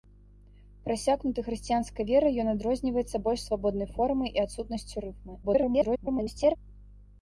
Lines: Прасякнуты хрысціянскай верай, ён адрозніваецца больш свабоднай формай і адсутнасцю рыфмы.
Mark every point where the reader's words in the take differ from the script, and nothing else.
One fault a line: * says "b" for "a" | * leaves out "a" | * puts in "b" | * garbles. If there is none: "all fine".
* garbles